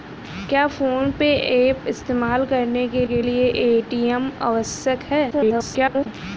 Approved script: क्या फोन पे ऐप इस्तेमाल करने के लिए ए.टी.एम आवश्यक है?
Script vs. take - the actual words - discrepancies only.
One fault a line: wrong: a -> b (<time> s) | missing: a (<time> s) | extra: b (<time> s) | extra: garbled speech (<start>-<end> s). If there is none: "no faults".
extra: के (3.0 s)
extra: garbled speech (5.3-6.1 s)